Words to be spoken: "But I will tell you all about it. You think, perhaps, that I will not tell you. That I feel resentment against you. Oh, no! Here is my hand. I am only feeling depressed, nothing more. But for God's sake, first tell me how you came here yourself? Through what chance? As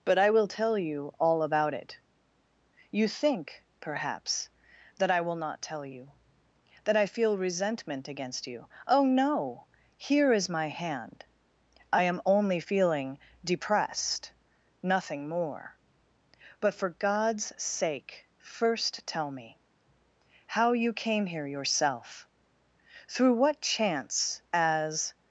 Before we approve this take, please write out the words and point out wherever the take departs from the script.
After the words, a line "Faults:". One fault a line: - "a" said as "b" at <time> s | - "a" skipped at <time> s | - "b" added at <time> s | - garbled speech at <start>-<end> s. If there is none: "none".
"But I will tell you all about it. You think, perhaps, that I will not tell you. That I feel resentment against you. Oh, no! Here is my hand. I am only feeling depressed, nothing more. But for God's sake, first tell me how you came here yourself? Through what chance? As
Faults:
none